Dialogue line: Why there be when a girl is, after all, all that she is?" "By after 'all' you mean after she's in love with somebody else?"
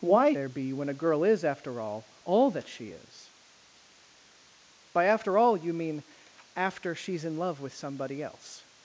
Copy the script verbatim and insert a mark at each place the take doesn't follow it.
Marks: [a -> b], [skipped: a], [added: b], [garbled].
Why there be when a girl is, after all, all that she is?" "By after 'all' you mean after she's in love with somebody else?"